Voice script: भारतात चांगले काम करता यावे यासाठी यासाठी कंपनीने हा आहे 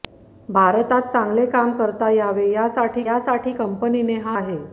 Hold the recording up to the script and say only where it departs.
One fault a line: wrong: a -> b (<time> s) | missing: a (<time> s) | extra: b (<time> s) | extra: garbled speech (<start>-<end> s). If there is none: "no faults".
no faults